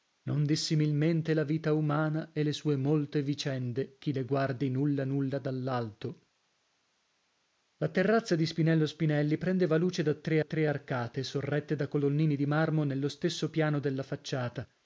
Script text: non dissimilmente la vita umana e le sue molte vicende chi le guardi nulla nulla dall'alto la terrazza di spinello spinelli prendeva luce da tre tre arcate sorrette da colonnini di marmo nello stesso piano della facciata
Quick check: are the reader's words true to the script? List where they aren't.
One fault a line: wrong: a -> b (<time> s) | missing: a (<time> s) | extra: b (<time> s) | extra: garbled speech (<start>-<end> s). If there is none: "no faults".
no faults